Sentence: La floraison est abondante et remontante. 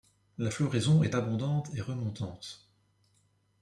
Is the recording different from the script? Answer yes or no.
no